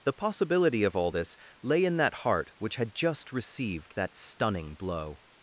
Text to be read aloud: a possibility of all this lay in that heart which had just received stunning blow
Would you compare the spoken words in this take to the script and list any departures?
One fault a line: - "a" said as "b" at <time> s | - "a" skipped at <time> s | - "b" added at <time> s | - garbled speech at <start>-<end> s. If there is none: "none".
- "a" said as "the" at 0.0 s
- "that" added at 3.9 s